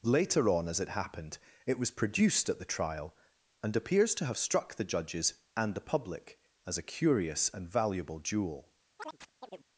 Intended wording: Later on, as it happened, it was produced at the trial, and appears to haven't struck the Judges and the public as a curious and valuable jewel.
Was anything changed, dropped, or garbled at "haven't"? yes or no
yes